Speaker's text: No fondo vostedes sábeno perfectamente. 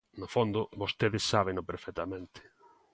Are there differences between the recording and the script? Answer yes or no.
no